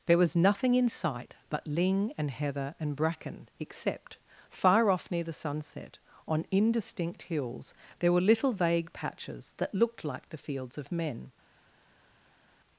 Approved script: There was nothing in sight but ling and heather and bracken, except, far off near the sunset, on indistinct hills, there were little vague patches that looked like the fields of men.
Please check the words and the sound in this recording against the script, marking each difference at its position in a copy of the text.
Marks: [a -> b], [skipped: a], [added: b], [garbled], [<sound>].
There was nothing in sight but ling and heather and bracken, except, far off near the sunset, on indistinct hills, there were little vague patches that looked like the fields of men.